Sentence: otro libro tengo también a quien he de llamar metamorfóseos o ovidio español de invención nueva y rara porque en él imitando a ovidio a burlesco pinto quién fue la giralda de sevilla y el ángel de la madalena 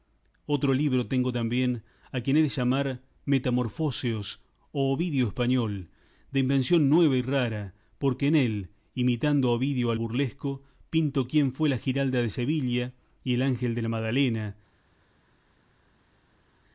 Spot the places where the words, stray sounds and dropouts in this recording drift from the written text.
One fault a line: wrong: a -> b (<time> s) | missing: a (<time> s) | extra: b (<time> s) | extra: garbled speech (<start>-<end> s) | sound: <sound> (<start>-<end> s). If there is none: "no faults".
no faults